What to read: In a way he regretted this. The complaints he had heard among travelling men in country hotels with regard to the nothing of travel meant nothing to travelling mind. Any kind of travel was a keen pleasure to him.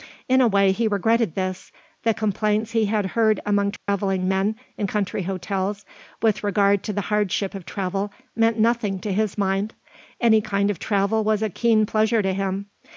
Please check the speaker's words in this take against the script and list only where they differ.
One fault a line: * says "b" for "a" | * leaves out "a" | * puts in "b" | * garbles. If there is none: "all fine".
* says "hardship" for "nothing"
* says "his" for "travelling"